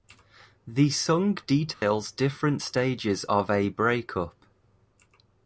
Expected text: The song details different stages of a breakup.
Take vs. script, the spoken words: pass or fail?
pass